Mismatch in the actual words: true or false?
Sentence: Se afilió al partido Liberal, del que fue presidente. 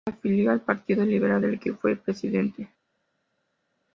false